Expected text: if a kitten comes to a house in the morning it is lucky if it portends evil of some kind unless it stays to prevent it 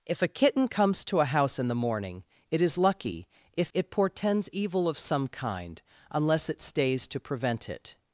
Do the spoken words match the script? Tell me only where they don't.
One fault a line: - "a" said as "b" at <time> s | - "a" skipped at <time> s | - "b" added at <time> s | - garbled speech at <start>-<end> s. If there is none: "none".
none